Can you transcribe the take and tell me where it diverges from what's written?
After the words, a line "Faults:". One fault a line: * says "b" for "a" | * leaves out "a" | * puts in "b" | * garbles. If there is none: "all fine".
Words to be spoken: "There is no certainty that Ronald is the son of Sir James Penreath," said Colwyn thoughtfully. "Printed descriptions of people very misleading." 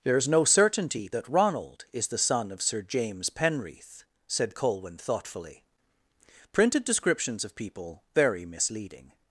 "There is no certainty that Ronald is the son of Sir James Penreath," said Colwyn thoughtfully. "Printed descriptions of people very misleading."
Faults:
all fine